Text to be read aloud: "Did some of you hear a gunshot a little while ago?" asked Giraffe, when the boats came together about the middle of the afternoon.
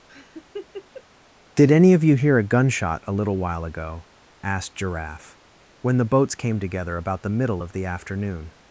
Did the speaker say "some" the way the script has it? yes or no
no